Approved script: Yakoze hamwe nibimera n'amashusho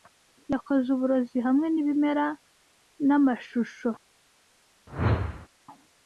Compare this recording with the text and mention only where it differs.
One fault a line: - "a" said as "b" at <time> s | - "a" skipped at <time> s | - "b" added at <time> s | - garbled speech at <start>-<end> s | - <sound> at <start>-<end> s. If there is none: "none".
- "uburozi" added at 0.9 s
- whoosh at 4.9-5.5 s